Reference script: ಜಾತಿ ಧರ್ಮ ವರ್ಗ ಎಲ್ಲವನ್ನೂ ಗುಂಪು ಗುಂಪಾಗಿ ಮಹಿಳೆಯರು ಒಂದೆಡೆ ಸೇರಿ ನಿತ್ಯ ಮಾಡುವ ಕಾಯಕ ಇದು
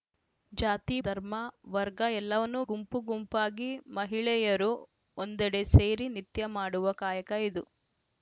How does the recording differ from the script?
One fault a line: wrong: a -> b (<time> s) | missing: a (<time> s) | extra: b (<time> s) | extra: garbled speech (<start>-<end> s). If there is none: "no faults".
no faults